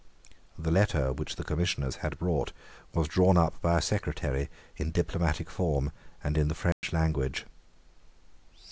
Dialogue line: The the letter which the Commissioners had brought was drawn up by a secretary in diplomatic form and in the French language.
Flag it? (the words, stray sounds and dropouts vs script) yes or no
yes